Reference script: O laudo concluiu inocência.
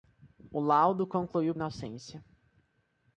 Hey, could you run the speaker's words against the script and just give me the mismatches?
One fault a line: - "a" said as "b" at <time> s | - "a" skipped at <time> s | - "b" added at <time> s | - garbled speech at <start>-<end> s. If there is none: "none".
none